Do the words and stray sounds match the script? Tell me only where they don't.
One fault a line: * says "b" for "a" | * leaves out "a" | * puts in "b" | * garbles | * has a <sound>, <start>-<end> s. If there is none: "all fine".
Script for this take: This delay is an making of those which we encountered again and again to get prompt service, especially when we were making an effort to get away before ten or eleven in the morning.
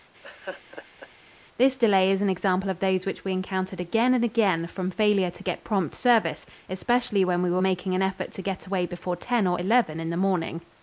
* has a laugh, 0.2-1.1 s
* says "example" for "making"
* puts in "from failure"